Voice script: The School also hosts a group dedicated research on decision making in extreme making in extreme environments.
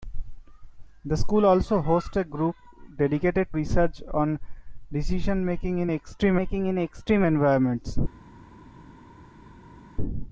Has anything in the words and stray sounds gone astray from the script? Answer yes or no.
no